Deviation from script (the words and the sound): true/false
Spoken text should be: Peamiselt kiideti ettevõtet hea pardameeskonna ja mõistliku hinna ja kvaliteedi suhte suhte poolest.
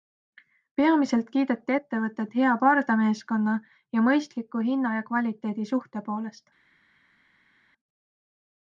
true